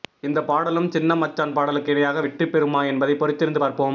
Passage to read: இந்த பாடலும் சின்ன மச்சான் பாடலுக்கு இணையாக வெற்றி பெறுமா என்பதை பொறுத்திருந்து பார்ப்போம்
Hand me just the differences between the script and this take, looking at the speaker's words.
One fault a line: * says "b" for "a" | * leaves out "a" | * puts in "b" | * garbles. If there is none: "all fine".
all fine